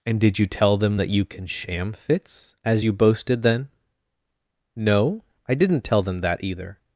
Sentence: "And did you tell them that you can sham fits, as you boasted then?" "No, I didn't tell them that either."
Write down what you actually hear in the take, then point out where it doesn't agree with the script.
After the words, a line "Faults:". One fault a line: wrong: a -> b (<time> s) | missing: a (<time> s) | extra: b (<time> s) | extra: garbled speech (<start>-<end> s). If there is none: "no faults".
"And did you tell them that you can sham fits, as you boasted then?" "No, I didn't tell them that either."
Faults:
no faults